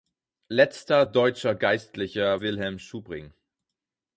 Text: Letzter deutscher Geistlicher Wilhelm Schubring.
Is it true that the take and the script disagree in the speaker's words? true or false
false